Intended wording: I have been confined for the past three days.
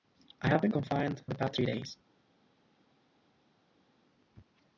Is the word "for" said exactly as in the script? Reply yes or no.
no